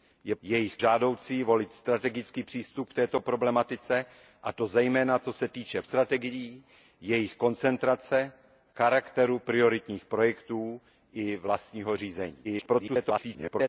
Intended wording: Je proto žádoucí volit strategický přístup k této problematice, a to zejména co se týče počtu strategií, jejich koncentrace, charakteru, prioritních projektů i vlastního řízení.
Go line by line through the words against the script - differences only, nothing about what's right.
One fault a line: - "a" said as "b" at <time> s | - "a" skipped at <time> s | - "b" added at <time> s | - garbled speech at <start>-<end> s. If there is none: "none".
- "proto" said as "jejich" at 0.4 s
- "počtu" skipped at 5.8 s
- garbled speech at 12.4-13.7 s